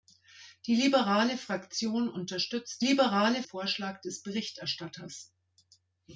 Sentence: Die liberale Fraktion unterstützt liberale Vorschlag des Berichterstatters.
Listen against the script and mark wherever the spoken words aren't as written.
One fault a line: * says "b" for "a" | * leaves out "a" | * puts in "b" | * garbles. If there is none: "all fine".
all fine